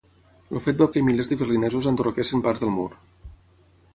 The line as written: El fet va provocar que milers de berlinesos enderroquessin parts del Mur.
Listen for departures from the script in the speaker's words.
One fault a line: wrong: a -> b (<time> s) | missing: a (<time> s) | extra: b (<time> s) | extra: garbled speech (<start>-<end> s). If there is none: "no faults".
missing: provocar (0.9 s)